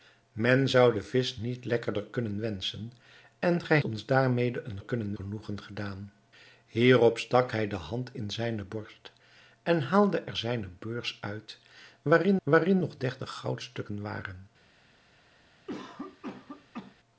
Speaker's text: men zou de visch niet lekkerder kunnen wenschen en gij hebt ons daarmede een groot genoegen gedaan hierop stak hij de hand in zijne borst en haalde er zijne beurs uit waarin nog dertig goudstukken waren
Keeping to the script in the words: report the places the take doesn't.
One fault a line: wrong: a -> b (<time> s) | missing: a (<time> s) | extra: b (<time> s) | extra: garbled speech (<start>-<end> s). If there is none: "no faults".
missing: hebt (3.8 s)
wrong: groot -> kunnen (4.8 s)
extra: waarin (12.4 s)